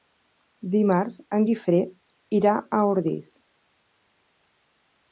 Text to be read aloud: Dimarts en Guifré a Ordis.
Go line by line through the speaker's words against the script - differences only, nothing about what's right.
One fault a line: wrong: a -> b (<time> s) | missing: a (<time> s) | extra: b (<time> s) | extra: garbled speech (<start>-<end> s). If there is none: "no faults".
extra: irà (2.4 s)